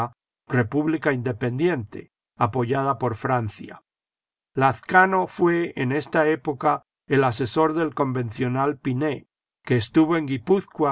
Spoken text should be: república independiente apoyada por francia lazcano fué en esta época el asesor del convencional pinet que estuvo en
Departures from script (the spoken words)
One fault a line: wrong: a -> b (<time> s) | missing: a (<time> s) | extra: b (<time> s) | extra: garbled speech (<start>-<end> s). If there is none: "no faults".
no faults